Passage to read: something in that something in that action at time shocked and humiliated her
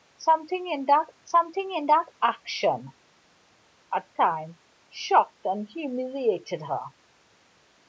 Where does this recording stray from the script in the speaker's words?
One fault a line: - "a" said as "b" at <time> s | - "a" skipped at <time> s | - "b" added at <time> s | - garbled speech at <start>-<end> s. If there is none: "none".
none